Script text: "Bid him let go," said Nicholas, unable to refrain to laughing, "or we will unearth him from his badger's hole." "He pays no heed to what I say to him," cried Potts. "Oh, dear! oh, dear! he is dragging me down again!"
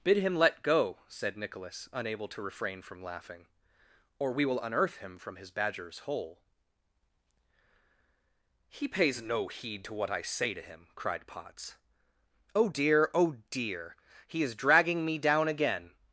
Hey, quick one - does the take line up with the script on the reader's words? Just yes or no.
no